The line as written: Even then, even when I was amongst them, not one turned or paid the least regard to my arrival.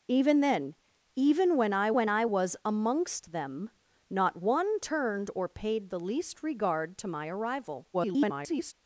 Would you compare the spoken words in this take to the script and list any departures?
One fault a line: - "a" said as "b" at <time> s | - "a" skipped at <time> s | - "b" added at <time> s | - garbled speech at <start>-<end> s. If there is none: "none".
- "when I" added at 1.9 s
- garbled speech at 7.9-8.7 s